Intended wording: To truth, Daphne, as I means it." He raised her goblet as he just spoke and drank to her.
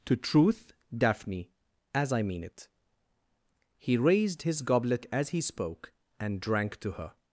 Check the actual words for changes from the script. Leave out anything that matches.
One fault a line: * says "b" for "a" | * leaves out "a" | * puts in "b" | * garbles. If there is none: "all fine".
* says "mean" for "means"
* says "his" for "her"
* leaves out "just"